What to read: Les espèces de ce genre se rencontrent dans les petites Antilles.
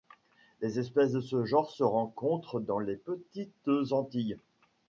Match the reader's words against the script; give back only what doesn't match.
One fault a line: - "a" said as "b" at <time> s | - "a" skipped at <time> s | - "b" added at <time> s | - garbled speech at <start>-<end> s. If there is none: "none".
none